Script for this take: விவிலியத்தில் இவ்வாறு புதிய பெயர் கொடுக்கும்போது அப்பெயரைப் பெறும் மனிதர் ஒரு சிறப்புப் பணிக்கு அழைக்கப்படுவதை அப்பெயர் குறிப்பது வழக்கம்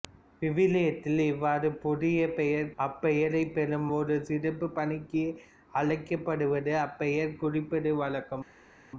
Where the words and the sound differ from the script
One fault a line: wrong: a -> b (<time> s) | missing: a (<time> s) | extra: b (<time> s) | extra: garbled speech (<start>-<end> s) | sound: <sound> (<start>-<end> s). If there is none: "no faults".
missing: கொடுக்கும்போது (2.7 s)
missing: மனிதர் (3.9 s)